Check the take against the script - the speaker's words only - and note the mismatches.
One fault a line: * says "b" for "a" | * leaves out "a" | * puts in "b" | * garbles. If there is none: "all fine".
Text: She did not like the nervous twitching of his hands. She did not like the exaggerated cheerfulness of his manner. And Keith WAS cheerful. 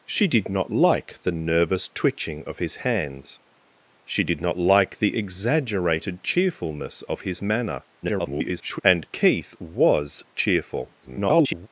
* garbles
* garbles